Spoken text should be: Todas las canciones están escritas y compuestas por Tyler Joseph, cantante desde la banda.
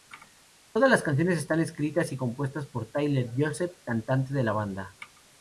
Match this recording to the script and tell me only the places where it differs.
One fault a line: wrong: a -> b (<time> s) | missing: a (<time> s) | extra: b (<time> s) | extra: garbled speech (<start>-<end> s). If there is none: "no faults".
wrong: desde -> de (4.3 s)